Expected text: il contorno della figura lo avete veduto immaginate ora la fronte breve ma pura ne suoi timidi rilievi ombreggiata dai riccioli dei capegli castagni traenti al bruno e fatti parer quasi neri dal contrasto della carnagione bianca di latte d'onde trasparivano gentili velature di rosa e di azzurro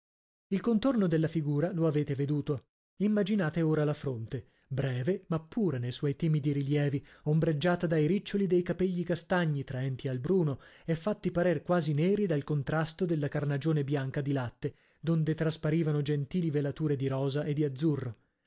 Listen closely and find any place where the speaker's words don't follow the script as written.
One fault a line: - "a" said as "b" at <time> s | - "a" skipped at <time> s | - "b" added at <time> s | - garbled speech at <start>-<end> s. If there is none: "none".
none